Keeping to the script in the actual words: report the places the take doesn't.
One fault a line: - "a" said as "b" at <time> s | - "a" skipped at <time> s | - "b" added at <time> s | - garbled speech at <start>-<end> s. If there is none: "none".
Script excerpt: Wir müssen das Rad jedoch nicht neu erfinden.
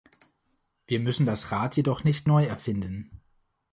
none